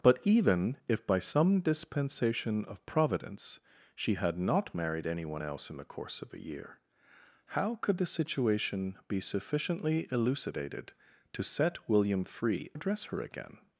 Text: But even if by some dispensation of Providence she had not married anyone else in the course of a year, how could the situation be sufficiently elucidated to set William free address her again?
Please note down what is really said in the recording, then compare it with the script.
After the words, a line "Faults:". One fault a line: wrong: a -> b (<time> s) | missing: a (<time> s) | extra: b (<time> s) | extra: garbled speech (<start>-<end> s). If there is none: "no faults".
But even if by some dispensation of Providence she had not married anyone else in the course of a year, how could the situation be sufficiently elucidated to set William free address her again?
Faults:
no faults